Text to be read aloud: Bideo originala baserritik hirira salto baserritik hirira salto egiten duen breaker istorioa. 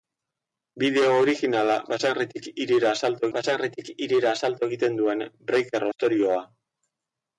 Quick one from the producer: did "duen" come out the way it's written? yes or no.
yes